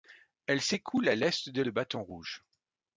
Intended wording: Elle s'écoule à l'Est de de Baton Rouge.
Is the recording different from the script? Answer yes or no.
no